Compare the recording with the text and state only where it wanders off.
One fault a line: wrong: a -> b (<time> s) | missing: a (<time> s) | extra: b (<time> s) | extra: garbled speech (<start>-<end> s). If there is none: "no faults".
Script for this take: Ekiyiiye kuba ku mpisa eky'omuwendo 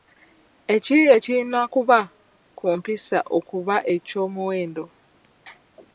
extra: kirina (1.2 s)
extra: okuba (3.4 s)